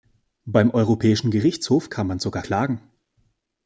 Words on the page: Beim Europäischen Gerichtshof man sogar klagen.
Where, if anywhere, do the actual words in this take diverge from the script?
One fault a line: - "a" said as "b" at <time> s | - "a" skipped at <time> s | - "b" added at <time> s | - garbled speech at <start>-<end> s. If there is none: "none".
- "kann" added at 1.9 s